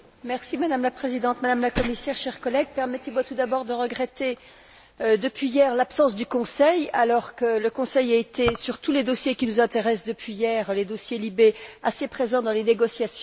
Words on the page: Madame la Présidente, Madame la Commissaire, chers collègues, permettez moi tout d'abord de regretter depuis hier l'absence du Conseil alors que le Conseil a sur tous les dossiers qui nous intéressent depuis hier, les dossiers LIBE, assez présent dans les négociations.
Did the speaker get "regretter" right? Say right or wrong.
right